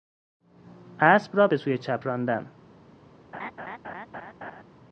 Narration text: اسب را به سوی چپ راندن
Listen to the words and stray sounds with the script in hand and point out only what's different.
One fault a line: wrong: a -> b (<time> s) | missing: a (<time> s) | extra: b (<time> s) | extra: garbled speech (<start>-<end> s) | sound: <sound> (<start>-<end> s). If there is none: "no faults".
sound: laugh (3.3-4.6 s)